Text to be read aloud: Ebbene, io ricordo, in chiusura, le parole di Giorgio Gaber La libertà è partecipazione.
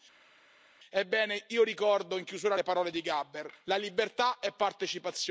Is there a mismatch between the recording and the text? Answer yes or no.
no